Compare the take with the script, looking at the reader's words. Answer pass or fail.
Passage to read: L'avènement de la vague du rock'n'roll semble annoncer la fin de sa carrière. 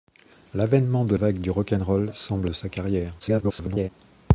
fail